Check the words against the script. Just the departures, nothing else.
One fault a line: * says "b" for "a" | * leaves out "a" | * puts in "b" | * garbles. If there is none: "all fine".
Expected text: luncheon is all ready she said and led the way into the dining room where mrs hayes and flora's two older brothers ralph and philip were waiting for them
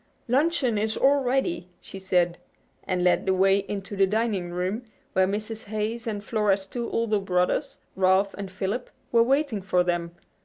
all fine